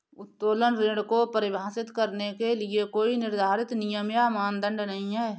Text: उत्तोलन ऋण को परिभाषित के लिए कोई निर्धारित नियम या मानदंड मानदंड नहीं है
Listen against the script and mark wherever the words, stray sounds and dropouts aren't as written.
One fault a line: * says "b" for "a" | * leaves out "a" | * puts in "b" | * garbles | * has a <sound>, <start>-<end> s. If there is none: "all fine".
* puts in "करने"
* leaves out "मानदंड"